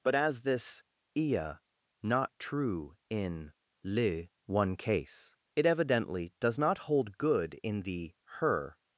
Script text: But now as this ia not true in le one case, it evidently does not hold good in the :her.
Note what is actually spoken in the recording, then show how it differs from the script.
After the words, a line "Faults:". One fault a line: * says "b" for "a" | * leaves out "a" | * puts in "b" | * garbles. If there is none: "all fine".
But as this ia not true in le one case, it evidently does not hold good in the :her.
Faults:
* leaves out "now"